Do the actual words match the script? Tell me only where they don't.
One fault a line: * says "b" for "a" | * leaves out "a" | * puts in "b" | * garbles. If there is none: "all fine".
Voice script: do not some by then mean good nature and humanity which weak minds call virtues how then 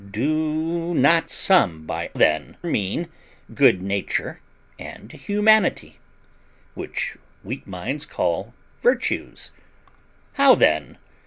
all fine